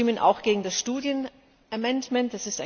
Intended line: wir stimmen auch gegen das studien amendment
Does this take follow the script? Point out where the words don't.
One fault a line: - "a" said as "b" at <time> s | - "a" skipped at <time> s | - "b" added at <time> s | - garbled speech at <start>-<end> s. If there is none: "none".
none